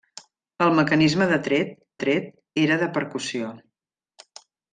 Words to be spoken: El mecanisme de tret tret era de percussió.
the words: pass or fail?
pass